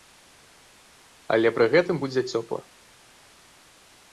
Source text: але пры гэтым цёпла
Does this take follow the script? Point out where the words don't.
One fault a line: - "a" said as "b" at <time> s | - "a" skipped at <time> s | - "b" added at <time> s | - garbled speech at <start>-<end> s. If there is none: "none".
- "будзе" added at 2.0 s